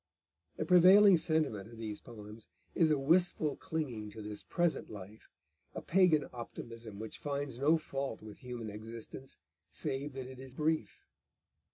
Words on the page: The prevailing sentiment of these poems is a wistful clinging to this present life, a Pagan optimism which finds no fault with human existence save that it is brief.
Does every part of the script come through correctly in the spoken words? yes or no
yes